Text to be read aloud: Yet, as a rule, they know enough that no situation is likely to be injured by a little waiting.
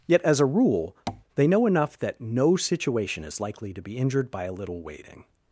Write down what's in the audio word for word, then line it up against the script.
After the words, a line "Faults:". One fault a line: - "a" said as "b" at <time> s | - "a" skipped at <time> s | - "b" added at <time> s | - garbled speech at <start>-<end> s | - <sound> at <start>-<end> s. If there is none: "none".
Yet, as a rule, they know enough that no situation is likely to be injured by a little waiting.
Faults:
- tap at 1.1-1.2 s